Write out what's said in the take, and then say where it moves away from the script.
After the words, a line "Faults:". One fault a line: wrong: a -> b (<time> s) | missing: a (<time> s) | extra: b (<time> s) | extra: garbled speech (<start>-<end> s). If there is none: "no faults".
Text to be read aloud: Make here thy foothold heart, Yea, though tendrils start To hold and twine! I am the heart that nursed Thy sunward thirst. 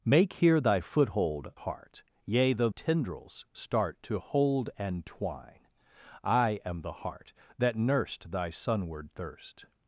Make here thy foothold heart, Yea, though tendrils start To hold and twine! I am the heart that nursed Thy sunward thirst.
Faults:
no faults